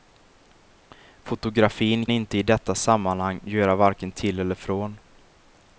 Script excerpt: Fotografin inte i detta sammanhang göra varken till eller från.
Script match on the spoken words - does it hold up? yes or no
yes